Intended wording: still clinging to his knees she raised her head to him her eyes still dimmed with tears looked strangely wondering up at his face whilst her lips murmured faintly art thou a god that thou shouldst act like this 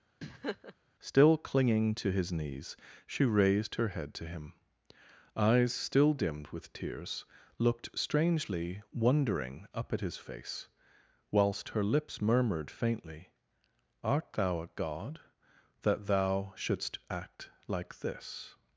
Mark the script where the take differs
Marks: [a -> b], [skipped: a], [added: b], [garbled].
still clinging to his knees she raised her head to him [skipped: her] eyes still dimmed with tears looked strangely wondering up at his face whilst her lips murmured faintly art thou a god that thou shouldst act like this